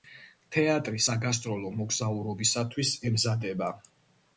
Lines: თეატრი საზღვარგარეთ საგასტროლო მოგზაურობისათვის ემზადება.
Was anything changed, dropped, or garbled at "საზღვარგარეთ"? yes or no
yes